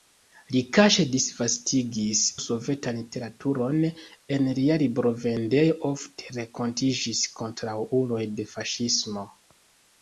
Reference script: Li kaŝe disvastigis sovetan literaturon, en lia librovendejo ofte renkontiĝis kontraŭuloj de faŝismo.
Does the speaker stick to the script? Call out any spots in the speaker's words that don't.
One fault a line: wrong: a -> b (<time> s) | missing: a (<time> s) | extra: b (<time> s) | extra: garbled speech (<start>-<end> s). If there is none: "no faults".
no faults